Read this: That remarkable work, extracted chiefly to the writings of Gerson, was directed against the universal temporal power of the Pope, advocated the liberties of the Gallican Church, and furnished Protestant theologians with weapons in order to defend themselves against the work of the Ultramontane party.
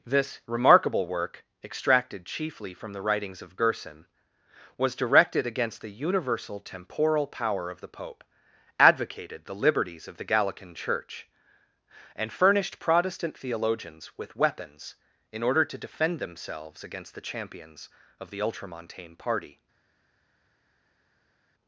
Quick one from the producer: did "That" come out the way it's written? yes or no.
no